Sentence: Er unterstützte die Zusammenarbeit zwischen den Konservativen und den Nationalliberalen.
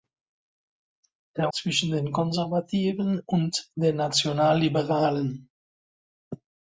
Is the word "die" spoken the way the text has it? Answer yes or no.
no